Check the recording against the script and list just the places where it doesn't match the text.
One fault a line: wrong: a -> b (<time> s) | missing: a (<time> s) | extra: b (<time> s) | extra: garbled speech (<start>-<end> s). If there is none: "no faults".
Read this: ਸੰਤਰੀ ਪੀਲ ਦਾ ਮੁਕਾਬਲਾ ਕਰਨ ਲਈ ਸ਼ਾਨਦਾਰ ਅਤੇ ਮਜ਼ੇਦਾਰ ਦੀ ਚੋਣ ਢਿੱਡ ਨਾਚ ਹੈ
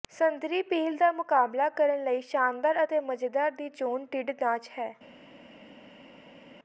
no faults